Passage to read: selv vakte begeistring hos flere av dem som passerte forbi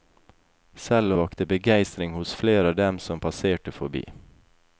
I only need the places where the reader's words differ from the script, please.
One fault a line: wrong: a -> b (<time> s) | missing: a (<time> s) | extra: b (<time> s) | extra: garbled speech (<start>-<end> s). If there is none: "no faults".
no faults